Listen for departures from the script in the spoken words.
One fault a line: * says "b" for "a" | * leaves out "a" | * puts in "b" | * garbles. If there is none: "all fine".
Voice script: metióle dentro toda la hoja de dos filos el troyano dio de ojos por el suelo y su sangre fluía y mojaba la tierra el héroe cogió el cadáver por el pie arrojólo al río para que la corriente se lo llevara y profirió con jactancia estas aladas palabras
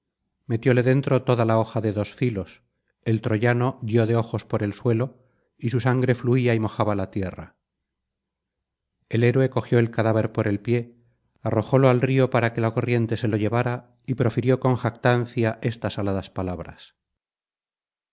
all fine